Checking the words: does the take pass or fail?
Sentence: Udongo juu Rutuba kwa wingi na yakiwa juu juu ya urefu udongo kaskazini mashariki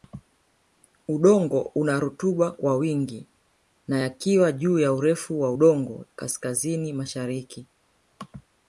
fail